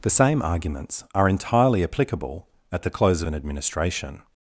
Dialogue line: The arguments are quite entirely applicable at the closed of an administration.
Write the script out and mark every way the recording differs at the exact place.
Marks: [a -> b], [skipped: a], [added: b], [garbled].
The [added: same] arguments are [skipped: quite] entirely applicable at the [closed -> close] of an administration.